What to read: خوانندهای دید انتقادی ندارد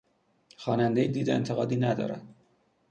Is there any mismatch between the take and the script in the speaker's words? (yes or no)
no